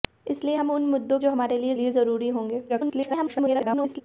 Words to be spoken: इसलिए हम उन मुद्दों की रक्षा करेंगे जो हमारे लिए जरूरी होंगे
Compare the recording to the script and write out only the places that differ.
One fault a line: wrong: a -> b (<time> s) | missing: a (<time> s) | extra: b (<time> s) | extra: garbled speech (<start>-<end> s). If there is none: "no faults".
missing: की रक्षा करेंगे (1.2 s)
extra: लिए (1.7 s)
extra: garbled speech (2.7-4.0 s)